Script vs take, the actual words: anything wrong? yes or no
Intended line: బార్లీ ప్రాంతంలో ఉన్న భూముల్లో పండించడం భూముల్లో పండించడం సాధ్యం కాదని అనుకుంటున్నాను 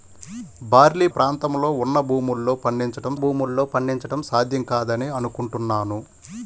no